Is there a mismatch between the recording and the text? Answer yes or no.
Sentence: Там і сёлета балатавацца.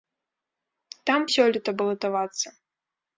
no